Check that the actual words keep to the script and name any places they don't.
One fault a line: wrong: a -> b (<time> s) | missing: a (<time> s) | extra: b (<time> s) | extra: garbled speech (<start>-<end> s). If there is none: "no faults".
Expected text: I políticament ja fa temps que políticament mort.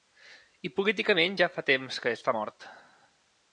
wrong: políticament -> està (2.2 s)